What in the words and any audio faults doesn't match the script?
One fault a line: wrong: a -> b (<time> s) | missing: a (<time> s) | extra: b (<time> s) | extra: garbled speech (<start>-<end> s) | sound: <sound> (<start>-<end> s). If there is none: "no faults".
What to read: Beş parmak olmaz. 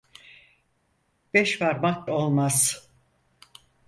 no faults